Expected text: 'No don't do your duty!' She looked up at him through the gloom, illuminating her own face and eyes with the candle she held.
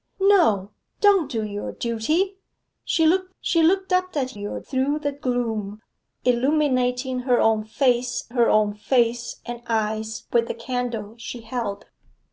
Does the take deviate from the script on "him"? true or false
true